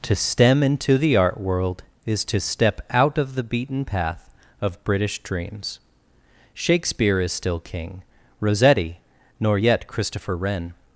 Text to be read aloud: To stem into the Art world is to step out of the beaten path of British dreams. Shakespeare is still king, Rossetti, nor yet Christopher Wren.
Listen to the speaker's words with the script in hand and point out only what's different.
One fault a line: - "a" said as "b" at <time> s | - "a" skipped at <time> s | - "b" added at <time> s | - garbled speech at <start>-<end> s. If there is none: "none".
none